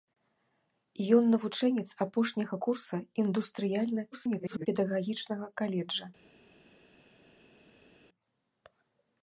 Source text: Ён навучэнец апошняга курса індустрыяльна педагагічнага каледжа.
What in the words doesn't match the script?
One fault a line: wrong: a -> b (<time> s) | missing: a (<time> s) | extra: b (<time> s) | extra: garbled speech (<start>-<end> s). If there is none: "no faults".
extra: garbled speech (4.1-4.7 s)